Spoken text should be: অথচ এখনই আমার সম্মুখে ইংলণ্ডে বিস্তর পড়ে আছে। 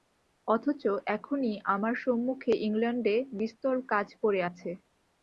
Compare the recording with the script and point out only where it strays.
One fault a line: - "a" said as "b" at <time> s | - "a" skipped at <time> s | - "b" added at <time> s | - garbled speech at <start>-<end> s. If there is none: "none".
- "কাজ" added at 3.9 s